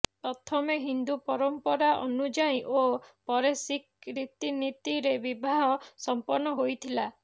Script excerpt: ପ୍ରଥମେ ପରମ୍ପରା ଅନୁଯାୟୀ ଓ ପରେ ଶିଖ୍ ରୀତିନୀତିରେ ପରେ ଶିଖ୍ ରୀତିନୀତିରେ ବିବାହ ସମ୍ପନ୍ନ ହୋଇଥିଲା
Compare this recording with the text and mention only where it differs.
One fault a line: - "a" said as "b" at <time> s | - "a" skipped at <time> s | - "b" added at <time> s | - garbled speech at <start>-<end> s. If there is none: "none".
- "ହିନ୍ଦୁ" added at 0.8 s
- "ପରେ ଶିଖ୍ ରୀତିନୀତିରେ" skipped at 5.2 s